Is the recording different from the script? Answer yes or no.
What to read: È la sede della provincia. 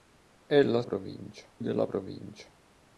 yes